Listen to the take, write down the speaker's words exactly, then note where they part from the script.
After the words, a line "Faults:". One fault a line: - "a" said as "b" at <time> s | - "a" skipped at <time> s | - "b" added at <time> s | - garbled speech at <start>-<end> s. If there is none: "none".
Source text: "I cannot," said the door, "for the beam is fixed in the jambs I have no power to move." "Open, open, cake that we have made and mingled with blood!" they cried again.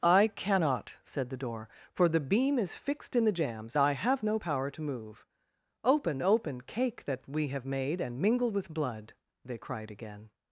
"I cannot," said the door, "for the beam is fixed in the jambs I have no power to move." "Open, open, cake that we have made and mingled with blood!" they cried again.
Faults:
none